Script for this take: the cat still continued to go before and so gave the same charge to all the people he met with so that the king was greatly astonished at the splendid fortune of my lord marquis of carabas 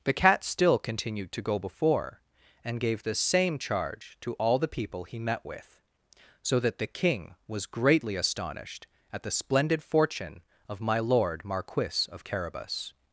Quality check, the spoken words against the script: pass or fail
fail